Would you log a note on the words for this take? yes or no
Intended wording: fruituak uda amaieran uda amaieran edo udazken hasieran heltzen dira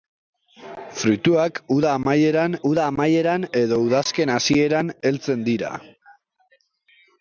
no